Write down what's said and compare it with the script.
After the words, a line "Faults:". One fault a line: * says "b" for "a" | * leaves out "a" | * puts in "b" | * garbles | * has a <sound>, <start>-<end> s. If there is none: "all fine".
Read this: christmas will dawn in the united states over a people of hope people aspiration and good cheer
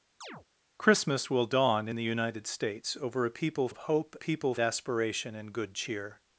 christmas will dawn in the united states over a people of hope people aspiration and good cheer
Faults:
* has a chirp, 0.2-0.5 s